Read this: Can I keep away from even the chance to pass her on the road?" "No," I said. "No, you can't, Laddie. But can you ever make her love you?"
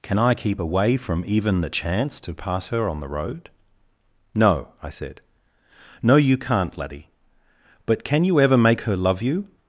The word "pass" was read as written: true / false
true